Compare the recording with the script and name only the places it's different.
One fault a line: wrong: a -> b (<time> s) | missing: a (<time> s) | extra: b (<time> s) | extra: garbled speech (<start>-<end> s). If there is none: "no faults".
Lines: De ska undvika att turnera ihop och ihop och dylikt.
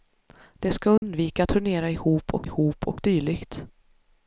no faults